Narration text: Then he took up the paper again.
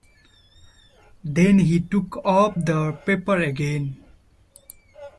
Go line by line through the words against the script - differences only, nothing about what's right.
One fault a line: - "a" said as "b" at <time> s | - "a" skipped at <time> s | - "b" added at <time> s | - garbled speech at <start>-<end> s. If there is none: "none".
none